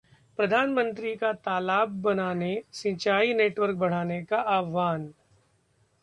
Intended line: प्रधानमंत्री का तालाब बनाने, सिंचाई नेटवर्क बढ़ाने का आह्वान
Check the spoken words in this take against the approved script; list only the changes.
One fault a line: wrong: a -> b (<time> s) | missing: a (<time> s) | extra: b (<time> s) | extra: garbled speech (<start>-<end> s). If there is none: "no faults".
no faults